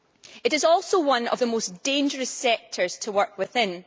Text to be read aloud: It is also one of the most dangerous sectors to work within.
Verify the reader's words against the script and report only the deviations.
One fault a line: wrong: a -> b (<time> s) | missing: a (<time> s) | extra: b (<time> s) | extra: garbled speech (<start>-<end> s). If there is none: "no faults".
no faults